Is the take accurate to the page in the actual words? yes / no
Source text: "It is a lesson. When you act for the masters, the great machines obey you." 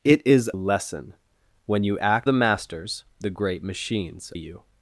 no